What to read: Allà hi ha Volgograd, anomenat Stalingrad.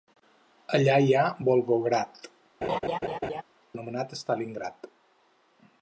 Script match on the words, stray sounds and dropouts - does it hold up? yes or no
no